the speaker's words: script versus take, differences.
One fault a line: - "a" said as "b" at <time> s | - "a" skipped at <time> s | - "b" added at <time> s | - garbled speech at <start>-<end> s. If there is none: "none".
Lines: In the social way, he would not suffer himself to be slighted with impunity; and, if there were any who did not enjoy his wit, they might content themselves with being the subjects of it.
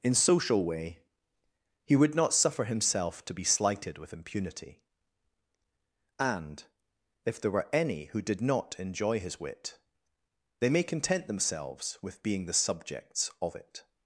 - "the" skipped at 0.1 s
- "might" said as "may" at 10.7 s